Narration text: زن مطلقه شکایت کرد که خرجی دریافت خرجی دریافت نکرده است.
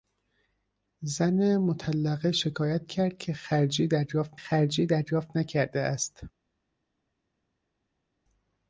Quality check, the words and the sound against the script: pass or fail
pass